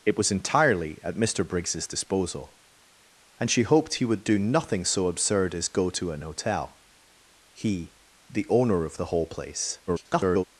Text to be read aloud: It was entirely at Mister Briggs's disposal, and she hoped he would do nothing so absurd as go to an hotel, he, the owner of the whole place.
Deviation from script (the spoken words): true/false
true